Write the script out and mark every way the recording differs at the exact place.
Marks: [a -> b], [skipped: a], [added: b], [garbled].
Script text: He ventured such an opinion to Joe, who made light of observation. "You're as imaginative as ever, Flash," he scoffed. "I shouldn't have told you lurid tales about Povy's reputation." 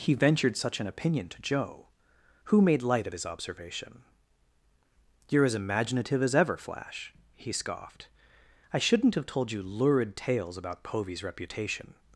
He ventured such an opinion to Joe, who made light of [added: his] observation. "You're as imaginative as ever, Flash," he scoffed. "I shouldn't have told you lurid tales about Povy's reputation."